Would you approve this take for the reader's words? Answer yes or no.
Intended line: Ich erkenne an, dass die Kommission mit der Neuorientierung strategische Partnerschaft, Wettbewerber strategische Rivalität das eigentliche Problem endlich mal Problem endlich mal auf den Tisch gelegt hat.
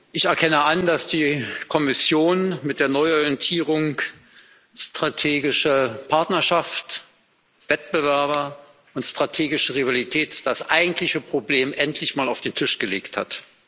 no